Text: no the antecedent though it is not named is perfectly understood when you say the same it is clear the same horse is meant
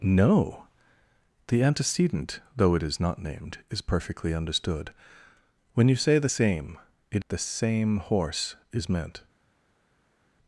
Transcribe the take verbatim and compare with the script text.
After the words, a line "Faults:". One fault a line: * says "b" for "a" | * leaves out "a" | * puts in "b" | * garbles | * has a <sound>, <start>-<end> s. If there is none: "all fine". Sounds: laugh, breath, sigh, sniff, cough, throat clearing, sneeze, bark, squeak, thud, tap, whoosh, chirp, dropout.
no the antecedent though it is not named is perfectly understood when you say the same it the same horse is meant
Faults:
* leaves out "is clear"